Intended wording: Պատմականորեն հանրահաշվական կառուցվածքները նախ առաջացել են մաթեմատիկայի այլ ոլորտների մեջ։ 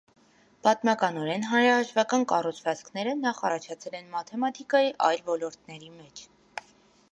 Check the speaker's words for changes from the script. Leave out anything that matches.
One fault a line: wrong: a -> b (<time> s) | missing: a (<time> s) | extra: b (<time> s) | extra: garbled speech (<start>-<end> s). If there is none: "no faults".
no faults